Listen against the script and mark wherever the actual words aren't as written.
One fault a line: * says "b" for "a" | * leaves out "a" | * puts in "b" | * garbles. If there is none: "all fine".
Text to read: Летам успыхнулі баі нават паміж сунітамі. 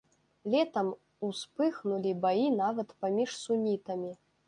all fine